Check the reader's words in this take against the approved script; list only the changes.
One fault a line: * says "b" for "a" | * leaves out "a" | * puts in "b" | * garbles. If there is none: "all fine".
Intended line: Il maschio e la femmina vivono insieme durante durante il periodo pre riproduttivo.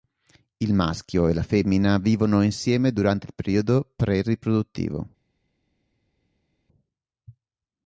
* leaves out "durante"